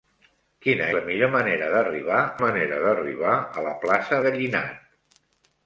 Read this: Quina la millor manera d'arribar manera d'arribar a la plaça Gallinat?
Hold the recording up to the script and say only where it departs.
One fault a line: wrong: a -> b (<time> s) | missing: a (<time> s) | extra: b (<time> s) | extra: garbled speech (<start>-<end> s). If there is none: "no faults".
no faults